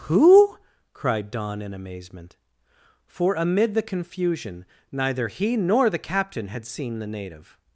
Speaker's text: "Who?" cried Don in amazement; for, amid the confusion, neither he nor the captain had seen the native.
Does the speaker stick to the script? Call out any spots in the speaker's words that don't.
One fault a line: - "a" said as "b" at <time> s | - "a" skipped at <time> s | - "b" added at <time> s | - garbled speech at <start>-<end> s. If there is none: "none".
none